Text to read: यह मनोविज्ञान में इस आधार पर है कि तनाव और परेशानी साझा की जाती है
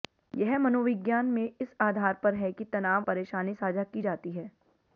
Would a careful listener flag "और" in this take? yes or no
yes